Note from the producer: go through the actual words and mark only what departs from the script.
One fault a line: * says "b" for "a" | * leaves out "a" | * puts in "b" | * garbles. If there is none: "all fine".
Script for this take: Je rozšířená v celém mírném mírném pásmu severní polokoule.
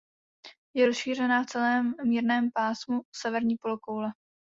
* leaves out "mírném"